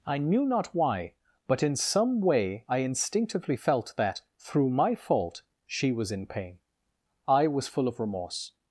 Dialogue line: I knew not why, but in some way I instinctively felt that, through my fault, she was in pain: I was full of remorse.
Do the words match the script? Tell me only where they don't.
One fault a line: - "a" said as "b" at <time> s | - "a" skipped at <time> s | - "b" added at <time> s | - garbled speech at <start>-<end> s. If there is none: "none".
none